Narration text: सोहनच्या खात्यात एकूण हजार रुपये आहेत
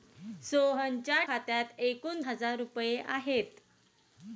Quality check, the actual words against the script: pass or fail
pass